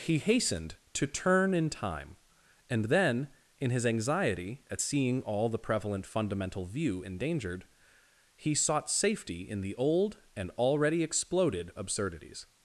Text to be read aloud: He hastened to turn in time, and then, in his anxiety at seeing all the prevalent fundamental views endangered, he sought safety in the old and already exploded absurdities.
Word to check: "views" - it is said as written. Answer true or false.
false